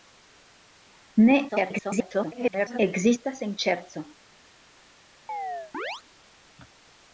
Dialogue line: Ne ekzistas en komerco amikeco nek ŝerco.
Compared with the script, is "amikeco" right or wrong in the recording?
wrong